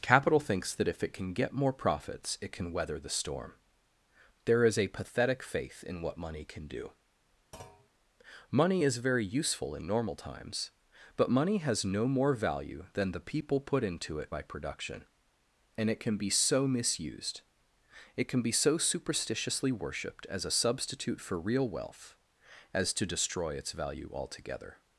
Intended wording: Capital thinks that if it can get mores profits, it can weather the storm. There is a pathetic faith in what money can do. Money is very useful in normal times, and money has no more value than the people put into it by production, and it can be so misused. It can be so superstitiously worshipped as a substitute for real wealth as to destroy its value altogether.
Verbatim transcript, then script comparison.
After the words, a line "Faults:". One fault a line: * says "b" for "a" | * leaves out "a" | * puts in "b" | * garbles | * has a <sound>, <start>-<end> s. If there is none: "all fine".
Capital thinks that if it can get more profits, it can weather the storm. There is a pathetic faith in what money can do. Money is very useful in normal times, but money has no more value than the people put into it by production, and it can be so misused. It can be so superstitiously worshipped as a substitute for real wealth as to destroy its value altogether.
Faults:
* says "more" for "mores"
* has a thud, 7.5-7.9 s
* says "but" for "and"